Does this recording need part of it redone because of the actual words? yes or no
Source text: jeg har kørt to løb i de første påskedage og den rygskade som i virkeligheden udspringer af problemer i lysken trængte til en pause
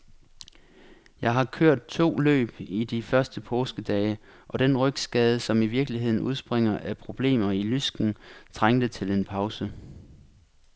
no